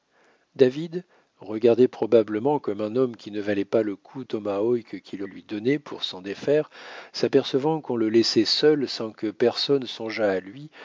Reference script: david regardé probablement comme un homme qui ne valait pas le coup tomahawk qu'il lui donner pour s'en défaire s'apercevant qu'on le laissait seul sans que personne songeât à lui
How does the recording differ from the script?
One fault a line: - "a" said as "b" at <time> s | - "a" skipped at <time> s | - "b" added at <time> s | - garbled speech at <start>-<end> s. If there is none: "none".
none